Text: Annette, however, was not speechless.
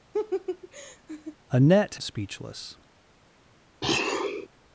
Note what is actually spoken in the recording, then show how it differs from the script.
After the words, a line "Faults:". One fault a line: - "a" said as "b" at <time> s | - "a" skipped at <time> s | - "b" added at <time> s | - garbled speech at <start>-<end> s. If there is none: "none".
Annette, speechless.
Faults:
- "however was not" skipped at 2.0 s